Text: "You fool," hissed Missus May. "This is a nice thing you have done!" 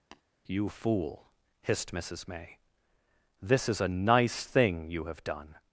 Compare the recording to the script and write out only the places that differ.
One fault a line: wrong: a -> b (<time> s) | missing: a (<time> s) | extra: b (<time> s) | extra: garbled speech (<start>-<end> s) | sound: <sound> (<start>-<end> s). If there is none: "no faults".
sound: tap (0.1-0.2 s)